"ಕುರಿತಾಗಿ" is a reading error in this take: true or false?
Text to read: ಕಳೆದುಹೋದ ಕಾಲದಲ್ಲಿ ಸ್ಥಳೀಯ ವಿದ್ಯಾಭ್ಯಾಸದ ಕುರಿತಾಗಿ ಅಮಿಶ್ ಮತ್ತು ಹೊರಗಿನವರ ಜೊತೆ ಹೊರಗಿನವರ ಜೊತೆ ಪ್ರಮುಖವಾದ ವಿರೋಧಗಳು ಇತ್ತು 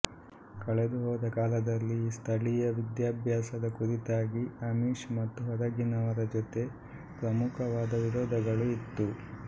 false